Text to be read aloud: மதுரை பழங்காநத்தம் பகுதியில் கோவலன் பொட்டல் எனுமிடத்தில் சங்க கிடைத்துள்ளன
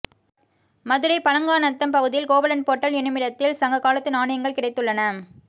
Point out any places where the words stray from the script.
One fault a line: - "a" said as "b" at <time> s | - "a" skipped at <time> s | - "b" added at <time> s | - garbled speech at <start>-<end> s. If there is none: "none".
- "காலத்து நாணயங்கள்" added at 3.8 s